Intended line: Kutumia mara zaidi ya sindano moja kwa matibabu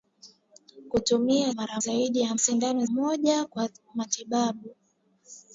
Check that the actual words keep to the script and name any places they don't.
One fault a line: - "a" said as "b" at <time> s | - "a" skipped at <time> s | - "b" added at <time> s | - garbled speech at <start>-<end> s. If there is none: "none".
none